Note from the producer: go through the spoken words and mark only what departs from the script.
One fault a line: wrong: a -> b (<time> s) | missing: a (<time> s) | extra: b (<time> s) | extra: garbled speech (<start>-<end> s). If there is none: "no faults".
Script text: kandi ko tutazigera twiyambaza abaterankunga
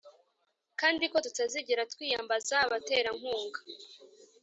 no faults